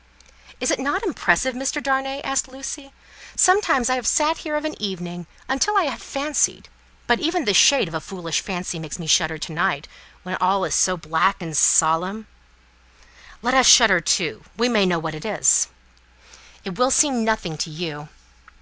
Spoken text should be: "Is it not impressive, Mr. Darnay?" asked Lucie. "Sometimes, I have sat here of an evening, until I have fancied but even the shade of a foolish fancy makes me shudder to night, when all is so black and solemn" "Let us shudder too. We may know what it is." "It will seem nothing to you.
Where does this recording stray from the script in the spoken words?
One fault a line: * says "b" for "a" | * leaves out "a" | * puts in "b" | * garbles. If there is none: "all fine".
all fine